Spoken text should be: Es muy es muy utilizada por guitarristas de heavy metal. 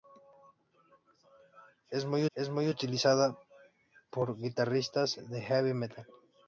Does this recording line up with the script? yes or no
yes